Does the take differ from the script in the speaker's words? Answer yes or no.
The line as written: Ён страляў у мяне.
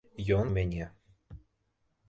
yes